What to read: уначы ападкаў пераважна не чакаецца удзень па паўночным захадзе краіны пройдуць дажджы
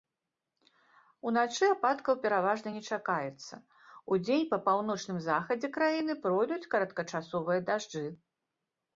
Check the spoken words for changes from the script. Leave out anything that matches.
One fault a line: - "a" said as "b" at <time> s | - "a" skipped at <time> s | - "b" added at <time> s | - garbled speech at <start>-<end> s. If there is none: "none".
- "кароткачасовыя" added at 6.8 s